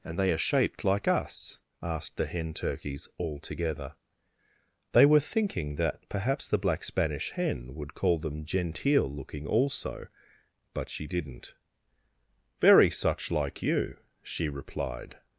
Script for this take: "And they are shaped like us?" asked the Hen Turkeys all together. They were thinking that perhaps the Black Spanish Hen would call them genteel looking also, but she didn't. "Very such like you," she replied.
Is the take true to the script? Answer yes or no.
yes